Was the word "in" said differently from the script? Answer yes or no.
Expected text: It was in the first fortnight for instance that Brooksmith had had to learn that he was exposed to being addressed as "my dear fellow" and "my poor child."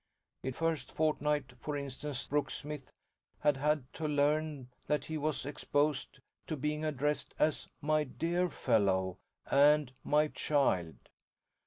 yes